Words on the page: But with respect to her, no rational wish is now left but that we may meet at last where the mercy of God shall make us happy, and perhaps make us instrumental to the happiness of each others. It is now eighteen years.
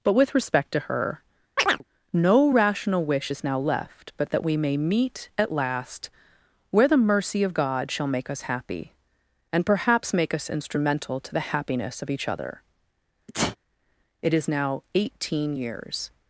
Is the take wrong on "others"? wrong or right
wrong